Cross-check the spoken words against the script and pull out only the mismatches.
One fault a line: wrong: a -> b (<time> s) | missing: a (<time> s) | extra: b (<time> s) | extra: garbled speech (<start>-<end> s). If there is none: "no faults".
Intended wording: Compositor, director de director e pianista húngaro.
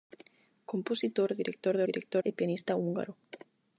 no faults